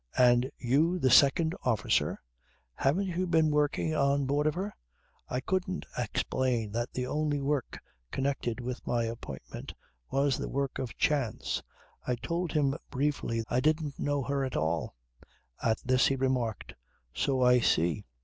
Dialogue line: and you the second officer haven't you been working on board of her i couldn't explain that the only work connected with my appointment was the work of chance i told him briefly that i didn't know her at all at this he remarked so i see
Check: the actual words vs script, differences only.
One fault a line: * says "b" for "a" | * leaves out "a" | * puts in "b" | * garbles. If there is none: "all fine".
* leaves out "that"